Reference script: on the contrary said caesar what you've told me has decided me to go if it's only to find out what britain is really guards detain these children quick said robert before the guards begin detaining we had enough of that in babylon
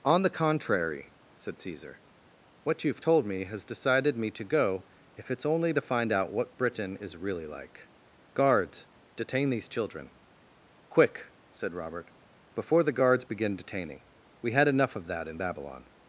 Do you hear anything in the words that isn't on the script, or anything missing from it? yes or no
yes